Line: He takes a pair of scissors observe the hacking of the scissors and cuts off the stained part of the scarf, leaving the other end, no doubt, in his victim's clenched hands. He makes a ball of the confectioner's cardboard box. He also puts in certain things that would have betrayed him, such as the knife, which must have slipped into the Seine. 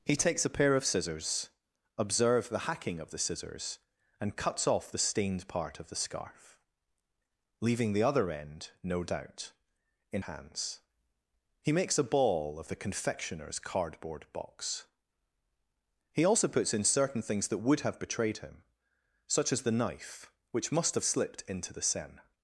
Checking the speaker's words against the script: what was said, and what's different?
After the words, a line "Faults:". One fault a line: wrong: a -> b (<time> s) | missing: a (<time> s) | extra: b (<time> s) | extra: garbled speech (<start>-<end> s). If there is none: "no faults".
He takes a pair of scissors observe the hacking of the scissors and cuts off the stained part of the scarf, leaving the other end, no doubt, in hands. He makes a ball of the confectioner's cardboard box. He also puts in certain things that would have betrayed him, such as the knife, which must have slipped into the Seine.
Faults:
missing: his victim's clenched (10.2 s)